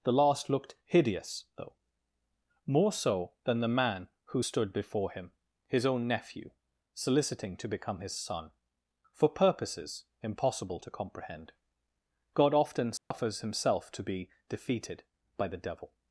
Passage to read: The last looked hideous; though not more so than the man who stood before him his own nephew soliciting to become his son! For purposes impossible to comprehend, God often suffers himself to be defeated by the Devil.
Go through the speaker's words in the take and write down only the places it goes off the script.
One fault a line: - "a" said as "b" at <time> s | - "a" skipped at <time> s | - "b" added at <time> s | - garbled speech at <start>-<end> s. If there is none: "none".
- "not" skipped at 1.8 s